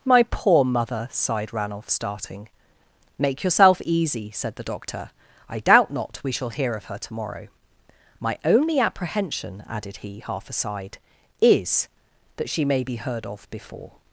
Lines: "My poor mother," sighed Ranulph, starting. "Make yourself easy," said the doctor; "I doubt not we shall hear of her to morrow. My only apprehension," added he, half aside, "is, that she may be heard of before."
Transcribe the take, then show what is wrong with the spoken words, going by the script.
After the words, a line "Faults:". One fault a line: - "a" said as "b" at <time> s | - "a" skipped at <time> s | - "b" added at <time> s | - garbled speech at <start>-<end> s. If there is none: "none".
"My poor mother," sighed Ranulph, starting. "Make yourself easy," said the doctor; "I doubt not we shall hear of her to morrow. My only apprehension," added he, half aside, "is, that she may be heard of before."
Faults:
none